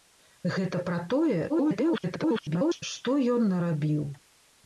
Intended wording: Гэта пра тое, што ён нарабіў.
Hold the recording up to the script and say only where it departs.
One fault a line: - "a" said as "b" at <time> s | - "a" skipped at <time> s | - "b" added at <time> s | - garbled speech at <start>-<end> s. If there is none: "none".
- garbled speech at 1.5-2.8 s